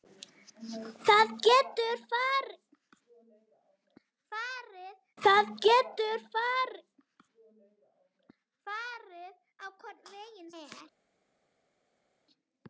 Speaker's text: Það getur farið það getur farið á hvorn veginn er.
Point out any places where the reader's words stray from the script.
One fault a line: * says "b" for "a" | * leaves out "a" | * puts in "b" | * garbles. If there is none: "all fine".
all fine